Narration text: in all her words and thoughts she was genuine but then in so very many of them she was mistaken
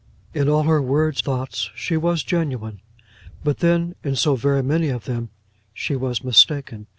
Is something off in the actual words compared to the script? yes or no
yes